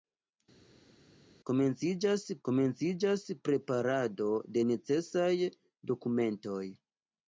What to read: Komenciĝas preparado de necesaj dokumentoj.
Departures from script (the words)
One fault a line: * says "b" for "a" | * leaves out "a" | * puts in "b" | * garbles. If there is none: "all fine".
* puts in "komenciĝas"